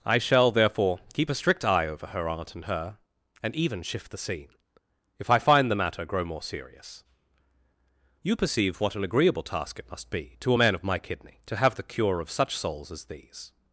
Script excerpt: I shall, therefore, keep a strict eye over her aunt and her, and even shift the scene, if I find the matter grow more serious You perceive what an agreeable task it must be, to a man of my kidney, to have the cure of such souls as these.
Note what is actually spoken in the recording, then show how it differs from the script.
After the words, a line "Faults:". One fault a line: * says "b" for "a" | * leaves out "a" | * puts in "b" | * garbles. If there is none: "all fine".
I shall, therefore, keep a strict eye over her aunt and her, and even shift the scene, if I find the matter grow more serious You perceive what an agreeable task it must be, to a man of my kidney, to have the cure of such souls as these.
Faults:
all fine